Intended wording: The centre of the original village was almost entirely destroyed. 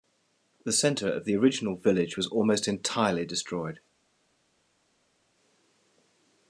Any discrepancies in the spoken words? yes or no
no